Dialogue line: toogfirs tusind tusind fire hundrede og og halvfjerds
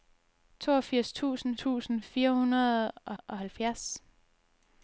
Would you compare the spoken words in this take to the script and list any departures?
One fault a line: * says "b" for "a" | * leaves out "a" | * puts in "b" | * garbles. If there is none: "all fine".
all fine